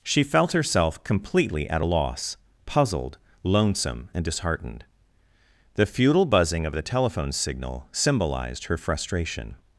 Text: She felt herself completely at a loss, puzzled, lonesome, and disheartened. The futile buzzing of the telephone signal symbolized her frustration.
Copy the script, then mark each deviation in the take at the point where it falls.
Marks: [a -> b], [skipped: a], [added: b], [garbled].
She felt herself completely at a loss, puzzled, lonesome, and disheartened. The futile buzzing of the telephone signal symbolized her frustration.